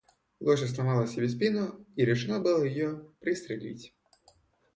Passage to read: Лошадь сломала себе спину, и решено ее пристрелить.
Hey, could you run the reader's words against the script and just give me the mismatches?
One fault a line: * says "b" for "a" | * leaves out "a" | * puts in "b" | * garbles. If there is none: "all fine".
* puts in "было"